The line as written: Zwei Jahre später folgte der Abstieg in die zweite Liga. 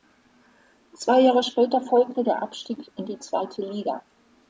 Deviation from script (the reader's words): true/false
false